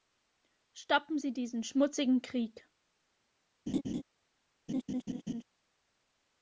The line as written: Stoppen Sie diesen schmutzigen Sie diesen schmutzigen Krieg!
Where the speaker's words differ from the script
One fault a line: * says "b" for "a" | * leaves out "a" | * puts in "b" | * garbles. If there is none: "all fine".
* leaves out "Sie diesen schmutzigen"